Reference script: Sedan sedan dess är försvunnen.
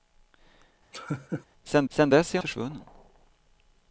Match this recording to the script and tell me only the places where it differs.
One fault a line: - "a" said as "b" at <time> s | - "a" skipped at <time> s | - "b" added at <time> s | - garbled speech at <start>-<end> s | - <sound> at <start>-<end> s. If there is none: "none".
- laugh at 0.9-1.5 s